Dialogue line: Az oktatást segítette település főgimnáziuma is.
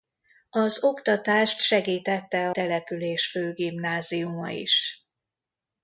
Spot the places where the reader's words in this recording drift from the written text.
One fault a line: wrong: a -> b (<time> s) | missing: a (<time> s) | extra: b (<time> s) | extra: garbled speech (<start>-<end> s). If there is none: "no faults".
no faults